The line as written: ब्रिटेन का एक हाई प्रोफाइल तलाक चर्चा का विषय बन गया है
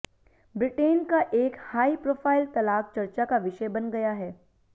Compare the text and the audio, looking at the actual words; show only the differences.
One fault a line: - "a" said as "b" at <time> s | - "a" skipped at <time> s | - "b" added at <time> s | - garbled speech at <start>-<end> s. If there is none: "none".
none